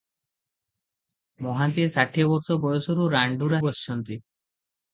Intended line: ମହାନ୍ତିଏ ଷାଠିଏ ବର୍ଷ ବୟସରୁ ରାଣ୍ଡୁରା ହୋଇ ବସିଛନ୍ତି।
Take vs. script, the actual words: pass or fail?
fail